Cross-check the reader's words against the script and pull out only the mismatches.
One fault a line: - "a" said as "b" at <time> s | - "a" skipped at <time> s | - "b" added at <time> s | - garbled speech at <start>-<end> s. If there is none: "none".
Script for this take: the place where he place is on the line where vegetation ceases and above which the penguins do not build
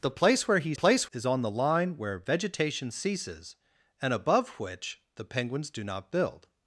none